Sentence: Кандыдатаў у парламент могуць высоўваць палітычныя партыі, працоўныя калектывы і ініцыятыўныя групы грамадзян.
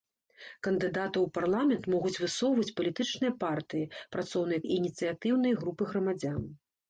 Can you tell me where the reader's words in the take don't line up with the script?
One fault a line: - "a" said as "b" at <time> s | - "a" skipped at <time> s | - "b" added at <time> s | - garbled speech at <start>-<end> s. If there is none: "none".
- "калектывы" skipped at 4.6 s